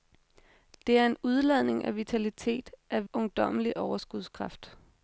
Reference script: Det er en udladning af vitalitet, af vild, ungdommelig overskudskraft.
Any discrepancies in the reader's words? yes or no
yes